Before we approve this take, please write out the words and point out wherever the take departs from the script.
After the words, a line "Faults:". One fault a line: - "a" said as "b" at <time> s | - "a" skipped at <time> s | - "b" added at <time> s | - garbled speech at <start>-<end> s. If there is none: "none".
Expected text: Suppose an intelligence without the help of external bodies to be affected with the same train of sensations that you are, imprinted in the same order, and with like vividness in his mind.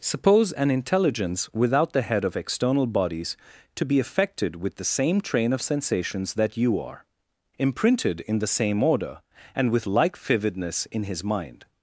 Suppose an intelligence without the head of external bodies to be affected with the same train of sensations that you are, imprinted in the same order, and with like vividness in his mind.
Faults:
- "help" said as "head" at 2.0 s